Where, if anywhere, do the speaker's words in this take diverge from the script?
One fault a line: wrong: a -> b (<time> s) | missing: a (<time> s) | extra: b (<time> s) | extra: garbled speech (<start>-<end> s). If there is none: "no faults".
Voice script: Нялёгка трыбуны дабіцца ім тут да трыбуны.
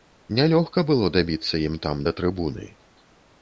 wrong: трыбуны -> было (0.9 s)
wrong: тут -> там (1.9 s)